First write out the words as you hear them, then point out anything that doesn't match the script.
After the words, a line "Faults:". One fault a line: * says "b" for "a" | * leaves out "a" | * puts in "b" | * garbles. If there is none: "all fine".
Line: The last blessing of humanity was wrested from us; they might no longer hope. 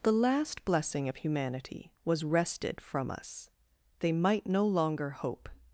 The last blessing of humanity was wrested from us; they might no longer hope.
Faults:
all fine